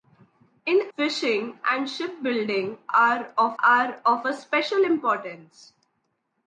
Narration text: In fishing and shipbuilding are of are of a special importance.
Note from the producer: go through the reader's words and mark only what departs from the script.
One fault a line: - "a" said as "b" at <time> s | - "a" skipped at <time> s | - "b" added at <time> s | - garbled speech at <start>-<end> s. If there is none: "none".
none